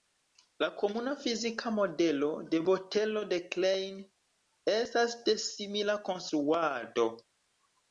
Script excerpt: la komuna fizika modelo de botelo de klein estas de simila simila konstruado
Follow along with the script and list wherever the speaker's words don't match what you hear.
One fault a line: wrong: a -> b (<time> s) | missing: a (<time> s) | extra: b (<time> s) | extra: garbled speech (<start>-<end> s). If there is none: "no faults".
missing: simila (6.0 s)